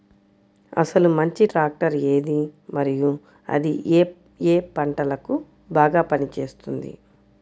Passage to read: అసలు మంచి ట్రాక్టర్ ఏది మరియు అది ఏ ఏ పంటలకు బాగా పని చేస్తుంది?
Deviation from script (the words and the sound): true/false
false